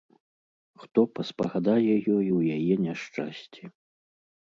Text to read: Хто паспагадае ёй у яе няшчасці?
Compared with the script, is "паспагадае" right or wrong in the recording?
right